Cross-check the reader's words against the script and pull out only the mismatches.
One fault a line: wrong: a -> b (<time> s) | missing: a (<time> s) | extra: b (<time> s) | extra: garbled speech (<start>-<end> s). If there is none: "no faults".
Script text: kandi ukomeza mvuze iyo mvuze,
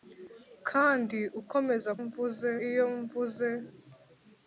no faults